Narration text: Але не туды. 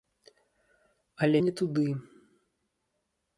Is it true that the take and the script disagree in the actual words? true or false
false